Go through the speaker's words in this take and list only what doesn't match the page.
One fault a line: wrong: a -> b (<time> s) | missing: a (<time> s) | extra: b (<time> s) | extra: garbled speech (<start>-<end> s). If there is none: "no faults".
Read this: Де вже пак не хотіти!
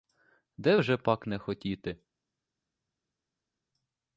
no faults